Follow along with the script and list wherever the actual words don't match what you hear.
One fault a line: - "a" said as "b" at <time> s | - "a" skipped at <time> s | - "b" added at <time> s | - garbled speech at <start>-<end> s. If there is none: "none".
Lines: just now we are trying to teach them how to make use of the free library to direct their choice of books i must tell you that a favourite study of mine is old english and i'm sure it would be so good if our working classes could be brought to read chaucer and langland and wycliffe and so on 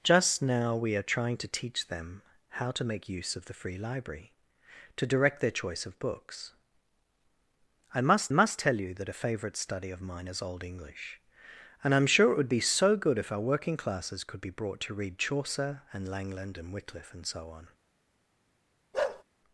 - "must" added at 8.3 s